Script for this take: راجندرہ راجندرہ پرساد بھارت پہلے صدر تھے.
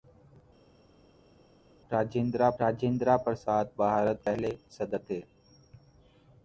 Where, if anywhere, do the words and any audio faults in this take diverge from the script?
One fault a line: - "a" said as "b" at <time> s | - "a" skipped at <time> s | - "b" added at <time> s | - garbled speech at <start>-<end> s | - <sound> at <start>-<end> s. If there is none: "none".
none